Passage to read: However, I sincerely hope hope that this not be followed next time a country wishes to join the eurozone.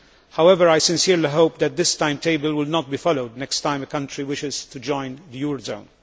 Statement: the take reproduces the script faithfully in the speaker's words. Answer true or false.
false